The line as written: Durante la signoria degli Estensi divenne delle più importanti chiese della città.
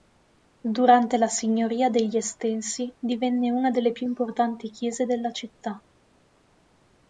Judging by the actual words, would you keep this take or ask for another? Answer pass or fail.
fail